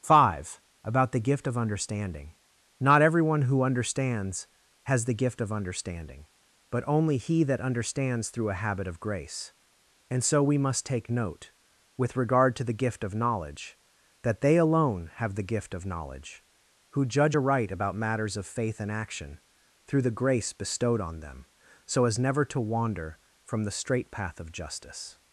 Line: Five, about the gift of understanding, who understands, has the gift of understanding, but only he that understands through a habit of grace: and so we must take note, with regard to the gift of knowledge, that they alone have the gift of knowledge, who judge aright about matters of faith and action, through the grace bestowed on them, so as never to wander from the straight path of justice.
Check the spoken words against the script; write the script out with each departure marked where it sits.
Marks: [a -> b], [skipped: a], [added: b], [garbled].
Five, about the gift of understanding, [added: not everyone] who understands, has the gift of understanding, but only he that understands through a habit of grace: and so we must take note, with regard to the gift of knowledge, that they alone have the gift of knowledge, who judge aright about matters of faith and action, through the grace bestowed on them, so as never to wander from the straight path of justice.